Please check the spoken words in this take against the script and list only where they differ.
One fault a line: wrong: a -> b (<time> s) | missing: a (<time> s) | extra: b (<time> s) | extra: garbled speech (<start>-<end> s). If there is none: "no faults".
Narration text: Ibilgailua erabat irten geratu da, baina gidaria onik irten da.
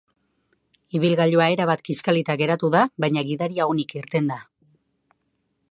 wrong: irten -> kiskalita (1.9 s)